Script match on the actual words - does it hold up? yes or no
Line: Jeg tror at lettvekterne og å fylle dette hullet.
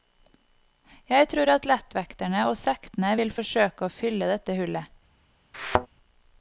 no